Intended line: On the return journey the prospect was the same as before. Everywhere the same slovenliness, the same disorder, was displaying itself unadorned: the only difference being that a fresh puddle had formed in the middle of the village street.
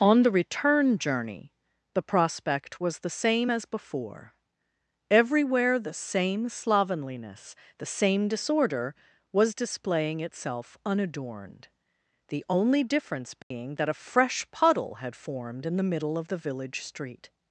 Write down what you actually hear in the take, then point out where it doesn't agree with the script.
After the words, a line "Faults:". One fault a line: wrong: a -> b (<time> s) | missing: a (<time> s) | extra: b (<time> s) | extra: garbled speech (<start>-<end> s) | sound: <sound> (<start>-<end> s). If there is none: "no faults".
On the return journey the prospect was the same as before. Everywhere the same slovenliness, the same disorder, was displaying itself unadorned: the only difference being that a fresh puddle had formed in the middle of the village street.
Faults:
sound: dropout (13.4-13.5 s)